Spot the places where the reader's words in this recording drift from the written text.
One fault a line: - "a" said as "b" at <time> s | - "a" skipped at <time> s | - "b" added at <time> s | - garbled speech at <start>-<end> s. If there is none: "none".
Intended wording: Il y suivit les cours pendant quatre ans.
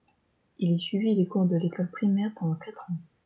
- "de l'école primaire" added at 1.4 s